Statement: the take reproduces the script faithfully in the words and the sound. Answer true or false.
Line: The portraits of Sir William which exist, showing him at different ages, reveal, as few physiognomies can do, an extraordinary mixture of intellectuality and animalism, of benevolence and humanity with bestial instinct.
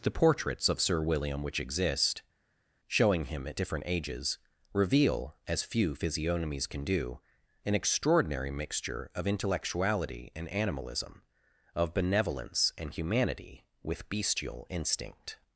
true